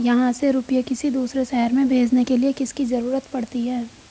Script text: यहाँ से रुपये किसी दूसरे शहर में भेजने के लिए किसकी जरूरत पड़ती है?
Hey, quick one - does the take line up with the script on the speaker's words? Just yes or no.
yes